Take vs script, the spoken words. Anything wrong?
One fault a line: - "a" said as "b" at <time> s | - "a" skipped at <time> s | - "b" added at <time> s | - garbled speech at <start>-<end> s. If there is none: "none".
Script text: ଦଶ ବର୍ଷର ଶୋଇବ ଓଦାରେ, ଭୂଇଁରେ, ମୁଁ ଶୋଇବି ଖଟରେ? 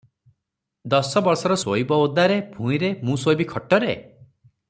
none